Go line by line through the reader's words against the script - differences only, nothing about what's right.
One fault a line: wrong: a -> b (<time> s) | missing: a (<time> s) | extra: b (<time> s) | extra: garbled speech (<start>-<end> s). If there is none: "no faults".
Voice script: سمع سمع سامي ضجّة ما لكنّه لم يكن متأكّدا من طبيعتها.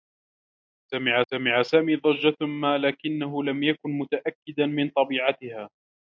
no faults